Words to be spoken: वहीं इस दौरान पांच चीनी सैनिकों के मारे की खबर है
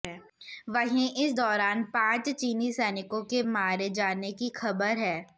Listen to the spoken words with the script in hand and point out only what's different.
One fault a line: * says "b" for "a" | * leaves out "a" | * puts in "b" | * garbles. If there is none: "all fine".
* puts in "जाने"